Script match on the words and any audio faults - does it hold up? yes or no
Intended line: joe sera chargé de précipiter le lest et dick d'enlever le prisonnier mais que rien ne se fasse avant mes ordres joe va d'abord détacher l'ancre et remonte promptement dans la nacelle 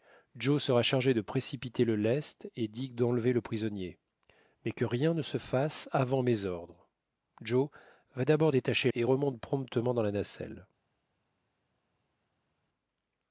no